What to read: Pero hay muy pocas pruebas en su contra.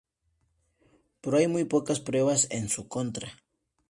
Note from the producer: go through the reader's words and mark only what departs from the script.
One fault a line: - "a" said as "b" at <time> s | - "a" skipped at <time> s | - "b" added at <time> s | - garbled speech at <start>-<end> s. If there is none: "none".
none